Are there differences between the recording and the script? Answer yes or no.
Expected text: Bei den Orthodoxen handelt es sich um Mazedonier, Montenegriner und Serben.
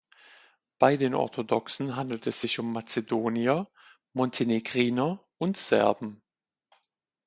no